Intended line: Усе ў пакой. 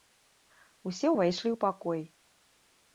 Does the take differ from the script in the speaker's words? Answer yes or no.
yes